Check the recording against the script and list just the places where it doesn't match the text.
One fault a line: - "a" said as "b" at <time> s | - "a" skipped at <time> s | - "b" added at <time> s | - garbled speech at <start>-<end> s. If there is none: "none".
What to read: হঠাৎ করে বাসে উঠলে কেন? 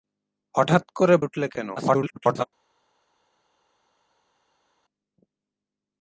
- "বাসে" skipped at 1.1 s
- garbled speech at 1.8-2.4 s